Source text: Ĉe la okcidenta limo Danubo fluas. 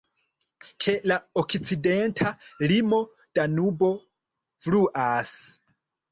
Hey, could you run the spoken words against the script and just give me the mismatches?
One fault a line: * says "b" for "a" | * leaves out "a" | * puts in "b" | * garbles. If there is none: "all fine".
all fine